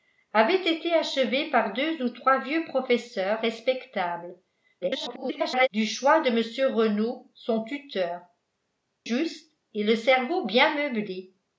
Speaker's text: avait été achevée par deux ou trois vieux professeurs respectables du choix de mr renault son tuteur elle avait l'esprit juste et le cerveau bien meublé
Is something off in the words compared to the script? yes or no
yes